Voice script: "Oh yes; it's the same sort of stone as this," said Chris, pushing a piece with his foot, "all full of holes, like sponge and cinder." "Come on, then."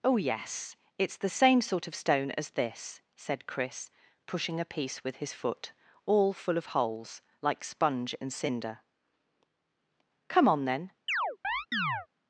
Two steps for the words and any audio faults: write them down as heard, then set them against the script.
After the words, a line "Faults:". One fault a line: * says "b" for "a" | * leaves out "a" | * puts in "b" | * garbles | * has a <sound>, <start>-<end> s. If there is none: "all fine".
"Oh yes; it's the same sort of stone as this," said Chris, pushing a piece with his foot, "all full of holes, like sponge and cinder." "Come on, then."
Faults:
* has a chirp, 11.1-12.1 s